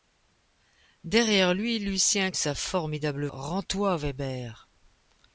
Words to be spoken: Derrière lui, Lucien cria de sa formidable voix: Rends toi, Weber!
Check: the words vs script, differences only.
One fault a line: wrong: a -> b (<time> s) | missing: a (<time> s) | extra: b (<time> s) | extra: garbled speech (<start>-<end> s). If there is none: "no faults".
missing: cria de (2.3 s)
missing: voix (3.3 s)